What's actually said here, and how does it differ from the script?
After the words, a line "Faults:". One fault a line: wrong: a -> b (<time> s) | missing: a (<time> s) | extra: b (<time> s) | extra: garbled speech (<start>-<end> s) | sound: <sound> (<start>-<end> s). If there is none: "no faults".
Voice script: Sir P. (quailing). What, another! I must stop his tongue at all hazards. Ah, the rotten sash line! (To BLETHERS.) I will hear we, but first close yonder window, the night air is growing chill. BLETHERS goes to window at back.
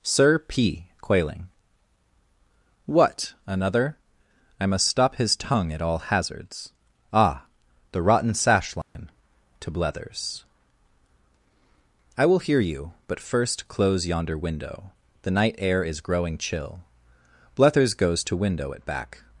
Sir P. (quailing). What, another! I must stop his tongue at all hazards. Ah, the rotten sash line! (To BLETHERS.) I will hear you, but first close yonder window, the night air is growing chill. BLETHERS goes to window at back.
Faults:
sound: dropout (8.8-9.0 s)
wrong: we -> you (12.6 s)